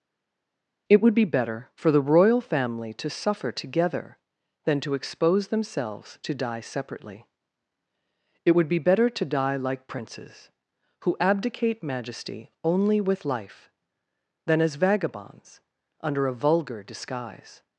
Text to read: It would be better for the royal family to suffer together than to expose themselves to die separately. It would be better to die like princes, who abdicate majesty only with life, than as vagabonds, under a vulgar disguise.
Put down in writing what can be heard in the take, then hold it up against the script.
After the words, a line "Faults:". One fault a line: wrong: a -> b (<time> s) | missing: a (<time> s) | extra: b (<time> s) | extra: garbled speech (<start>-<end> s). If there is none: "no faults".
It would be better for the royal family to suffer together than to expose themselves to die separately. It would be better to die like princes, who abdicate majesty only with life, than as vagabonds, under a vulgar disguise.
Faults:
no faults